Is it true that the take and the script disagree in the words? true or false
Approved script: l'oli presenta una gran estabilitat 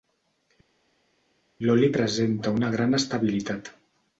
false